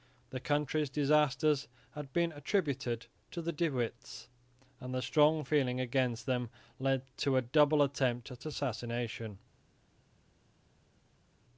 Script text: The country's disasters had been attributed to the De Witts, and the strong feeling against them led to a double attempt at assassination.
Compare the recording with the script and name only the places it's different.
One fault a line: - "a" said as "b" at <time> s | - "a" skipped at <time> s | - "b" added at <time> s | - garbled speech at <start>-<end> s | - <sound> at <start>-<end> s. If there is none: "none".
none